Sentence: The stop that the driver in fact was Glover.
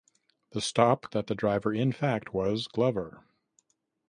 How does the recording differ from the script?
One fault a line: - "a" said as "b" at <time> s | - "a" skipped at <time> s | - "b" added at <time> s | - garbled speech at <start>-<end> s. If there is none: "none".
none